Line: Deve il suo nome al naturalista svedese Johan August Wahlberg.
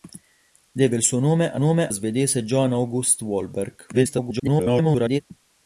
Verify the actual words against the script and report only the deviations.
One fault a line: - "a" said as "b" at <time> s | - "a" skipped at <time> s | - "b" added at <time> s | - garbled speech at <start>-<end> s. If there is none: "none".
- "naturalista" said as "nome" at 1.6 s
- garbled speech at 3.9-5.2 s